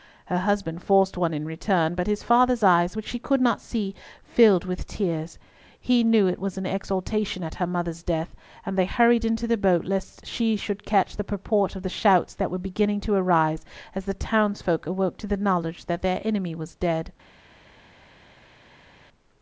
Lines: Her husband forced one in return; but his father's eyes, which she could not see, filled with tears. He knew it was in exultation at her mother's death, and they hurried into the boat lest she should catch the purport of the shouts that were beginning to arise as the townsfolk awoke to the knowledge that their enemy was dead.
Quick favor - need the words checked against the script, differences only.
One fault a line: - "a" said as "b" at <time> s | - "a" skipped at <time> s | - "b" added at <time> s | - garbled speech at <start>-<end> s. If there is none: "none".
none